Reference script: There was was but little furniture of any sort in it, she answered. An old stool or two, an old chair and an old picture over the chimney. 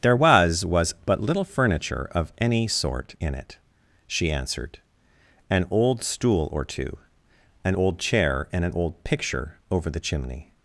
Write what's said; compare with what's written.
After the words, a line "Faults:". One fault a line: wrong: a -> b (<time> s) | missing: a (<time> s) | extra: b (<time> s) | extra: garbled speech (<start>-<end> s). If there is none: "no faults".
There was was but little furniture of any sort in it, she answered. An old stool or two, an old chair and an old picture over the chimney.
Faults:
no faults